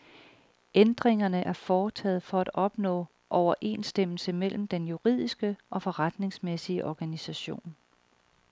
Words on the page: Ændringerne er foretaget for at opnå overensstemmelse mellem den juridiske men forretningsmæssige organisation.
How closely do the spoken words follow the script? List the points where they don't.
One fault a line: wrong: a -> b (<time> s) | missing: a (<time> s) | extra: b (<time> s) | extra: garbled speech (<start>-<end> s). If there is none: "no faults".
wrong: men -> og (5.7 s)